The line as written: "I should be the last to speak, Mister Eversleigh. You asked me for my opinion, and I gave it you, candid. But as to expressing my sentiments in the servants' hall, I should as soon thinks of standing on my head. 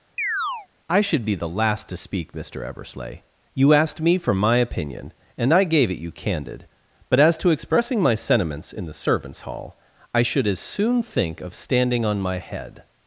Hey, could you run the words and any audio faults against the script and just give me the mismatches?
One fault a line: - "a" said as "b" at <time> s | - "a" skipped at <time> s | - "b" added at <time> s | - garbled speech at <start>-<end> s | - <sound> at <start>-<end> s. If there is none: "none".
- chirp at 0.2-0.7 s
- "thinks" said as "think" at 11.0 s